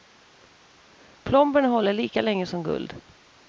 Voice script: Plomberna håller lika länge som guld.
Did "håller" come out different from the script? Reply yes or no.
no